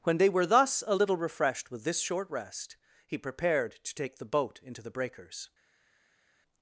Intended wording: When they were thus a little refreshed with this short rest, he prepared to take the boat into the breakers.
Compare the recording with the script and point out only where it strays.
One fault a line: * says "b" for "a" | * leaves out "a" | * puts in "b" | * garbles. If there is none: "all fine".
all fine